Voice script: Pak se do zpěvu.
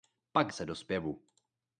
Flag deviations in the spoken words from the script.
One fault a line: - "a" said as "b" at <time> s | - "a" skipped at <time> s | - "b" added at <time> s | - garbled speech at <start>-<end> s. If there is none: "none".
none